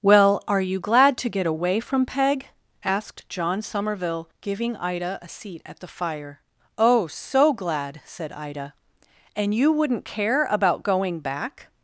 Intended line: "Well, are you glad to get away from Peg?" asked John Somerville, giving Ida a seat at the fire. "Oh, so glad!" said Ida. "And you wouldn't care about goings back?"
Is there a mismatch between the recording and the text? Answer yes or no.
yes